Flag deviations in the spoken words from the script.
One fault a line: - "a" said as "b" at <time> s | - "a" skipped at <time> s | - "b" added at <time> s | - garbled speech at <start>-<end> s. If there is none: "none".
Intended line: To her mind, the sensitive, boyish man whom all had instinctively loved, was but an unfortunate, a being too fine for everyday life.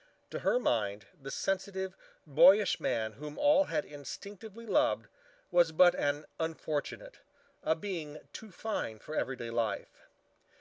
none